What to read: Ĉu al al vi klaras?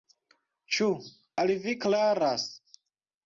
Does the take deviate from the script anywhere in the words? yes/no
yes